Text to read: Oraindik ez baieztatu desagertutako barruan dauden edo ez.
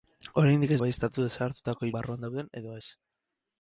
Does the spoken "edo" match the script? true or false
true